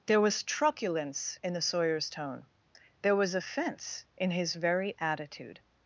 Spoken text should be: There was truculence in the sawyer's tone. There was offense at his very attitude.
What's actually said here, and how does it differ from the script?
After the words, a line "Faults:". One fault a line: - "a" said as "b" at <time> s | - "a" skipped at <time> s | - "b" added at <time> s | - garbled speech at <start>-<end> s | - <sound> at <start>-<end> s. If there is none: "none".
There was truculence in the sawyer's tone. There was offense in his very attitude.
Faults:
- "at" said as "in" at 4.2 s